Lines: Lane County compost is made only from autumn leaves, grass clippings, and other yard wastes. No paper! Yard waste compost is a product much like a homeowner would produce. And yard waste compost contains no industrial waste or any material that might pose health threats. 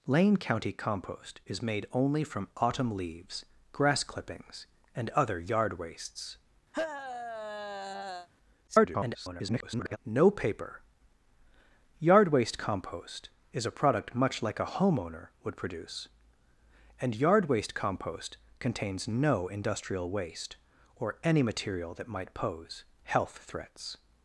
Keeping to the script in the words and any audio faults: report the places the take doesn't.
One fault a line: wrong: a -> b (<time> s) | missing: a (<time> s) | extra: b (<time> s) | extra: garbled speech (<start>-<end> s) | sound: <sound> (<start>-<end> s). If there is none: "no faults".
sound: sigh (6.7-8.3 s)
extra: garbled speech (8.7-10.0 s)